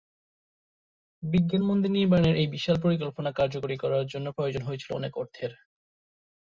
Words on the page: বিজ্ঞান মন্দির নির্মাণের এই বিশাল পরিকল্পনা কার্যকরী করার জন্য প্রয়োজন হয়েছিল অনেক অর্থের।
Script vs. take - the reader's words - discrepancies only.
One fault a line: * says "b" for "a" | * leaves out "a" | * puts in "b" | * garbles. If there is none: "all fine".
all fine